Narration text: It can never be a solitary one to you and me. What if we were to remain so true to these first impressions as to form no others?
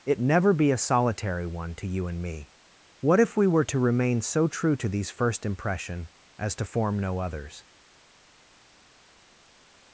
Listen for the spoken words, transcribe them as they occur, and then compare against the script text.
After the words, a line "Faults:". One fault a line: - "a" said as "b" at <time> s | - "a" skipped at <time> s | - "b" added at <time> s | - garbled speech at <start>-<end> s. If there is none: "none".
It never be a solitary one to you and me. What if we were to remain so true to these first impression as to form no others?
Faults:
- "can" skipped at 0.2 s
- "impressions" said as "impression" at 5.5 s